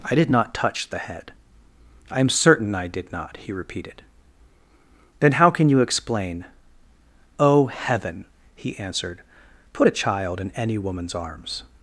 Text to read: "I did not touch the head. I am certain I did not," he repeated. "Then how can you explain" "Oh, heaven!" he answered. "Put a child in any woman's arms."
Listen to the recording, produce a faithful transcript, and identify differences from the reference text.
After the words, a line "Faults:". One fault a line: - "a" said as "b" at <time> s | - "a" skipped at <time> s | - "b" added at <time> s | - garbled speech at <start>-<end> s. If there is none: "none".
"I did not touch the head. I am certain I did not," he repeated. "Then how can you explain" "Oh, heaven!" he answered. "Put a child in any woman's arms."
Faults:
none